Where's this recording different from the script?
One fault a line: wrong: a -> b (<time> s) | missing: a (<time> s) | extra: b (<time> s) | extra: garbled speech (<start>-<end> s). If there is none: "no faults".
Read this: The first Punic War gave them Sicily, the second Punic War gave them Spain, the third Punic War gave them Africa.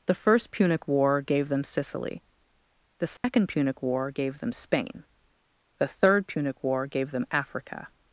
no faults